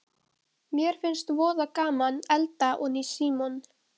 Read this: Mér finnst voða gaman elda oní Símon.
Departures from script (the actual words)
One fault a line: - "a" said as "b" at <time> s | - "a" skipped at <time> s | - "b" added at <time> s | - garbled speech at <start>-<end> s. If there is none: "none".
none